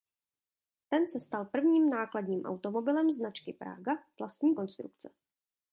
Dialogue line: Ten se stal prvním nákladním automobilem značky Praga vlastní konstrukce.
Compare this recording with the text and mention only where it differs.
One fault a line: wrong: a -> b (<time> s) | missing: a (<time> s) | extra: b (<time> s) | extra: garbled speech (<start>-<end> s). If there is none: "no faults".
no faults